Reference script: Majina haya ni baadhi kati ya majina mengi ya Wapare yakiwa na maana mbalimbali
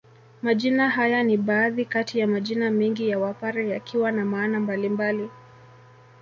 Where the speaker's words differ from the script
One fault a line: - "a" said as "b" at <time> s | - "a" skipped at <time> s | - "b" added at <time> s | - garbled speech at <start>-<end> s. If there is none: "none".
none